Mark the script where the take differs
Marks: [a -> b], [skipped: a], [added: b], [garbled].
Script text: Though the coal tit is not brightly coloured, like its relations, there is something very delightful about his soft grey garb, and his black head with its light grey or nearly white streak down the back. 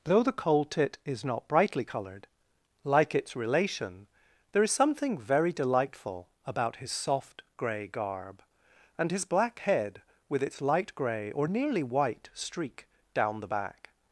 Though the coal tit is not brightly coloured, like its [relations, -> relation] there is something very delightful about his soft grey garb, and his black head with its light grey or nearly white streak down the back.